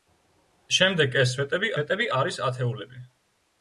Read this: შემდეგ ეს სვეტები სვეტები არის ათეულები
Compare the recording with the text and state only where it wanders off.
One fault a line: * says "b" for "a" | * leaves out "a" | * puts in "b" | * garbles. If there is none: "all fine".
all fine